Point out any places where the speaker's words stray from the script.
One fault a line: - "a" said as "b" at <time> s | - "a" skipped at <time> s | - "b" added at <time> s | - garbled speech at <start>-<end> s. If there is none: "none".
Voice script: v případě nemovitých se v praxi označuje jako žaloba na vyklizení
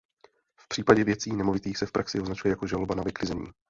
- "věcí" added at 1.0 s